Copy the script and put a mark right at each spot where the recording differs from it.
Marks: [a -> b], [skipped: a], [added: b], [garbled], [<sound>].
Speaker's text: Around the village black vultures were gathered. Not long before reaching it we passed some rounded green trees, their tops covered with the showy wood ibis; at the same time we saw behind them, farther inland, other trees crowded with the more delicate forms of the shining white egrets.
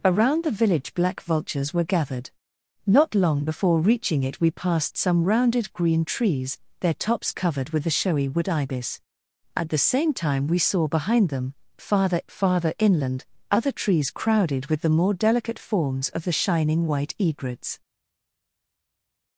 Around the village black vultures were gathered. Not long before reaching it we passed some rounded green trees, their tops covered with the showy wood ibis; at the same time we saw behind them, farther [added: farther] inland, other trees crowded with the more delicate forms of the shining white egrets.